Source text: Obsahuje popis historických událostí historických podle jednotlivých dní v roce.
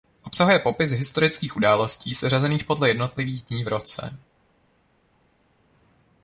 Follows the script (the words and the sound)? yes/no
no